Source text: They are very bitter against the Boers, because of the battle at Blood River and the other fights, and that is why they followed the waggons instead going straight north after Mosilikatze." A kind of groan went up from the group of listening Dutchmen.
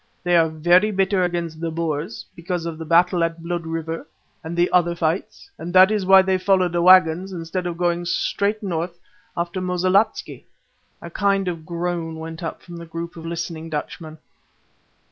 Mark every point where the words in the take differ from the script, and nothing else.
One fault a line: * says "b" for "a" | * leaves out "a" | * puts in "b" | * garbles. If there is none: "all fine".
* puts in "of"